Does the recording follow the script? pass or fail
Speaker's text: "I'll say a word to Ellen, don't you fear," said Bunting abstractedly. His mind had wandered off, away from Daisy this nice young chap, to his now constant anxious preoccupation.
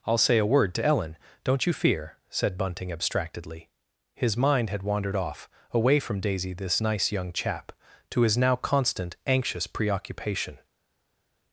pass